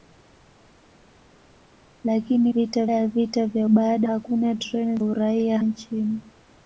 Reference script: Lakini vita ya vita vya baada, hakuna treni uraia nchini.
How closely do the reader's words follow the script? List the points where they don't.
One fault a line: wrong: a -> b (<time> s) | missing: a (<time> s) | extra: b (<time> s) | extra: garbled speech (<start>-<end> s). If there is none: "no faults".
no faults